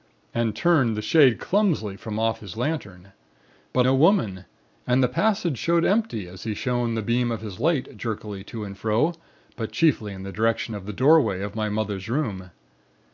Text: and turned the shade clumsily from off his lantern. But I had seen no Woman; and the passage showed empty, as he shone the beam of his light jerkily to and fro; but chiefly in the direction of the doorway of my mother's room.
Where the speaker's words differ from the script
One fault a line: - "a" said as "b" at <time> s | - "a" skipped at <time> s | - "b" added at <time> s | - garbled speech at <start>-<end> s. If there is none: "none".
- "I had seen" skipped at 3.9 s